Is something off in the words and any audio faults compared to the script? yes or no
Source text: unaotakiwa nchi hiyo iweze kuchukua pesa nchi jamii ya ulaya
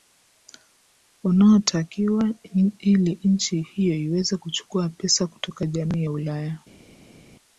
yes